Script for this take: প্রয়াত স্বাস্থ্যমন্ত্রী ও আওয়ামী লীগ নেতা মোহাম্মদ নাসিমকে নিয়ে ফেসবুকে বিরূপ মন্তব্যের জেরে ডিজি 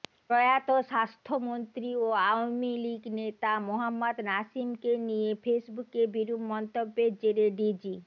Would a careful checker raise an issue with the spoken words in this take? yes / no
no